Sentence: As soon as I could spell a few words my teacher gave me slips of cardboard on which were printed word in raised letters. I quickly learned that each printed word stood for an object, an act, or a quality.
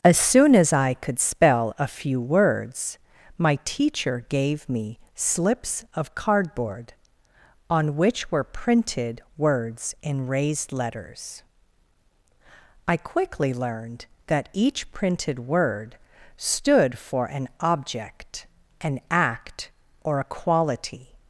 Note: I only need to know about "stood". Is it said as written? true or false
true